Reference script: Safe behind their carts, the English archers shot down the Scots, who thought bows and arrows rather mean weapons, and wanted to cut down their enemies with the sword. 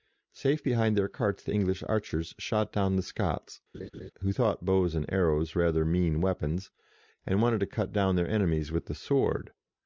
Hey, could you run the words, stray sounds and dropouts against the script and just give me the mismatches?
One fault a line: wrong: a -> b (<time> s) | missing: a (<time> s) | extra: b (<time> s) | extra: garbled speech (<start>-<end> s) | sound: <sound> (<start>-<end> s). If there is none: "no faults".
sound: laugh (3.7-4.1 s)